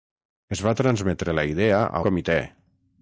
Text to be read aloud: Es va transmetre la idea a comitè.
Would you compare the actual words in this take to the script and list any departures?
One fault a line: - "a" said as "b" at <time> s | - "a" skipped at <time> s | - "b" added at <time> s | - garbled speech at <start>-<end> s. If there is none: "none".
none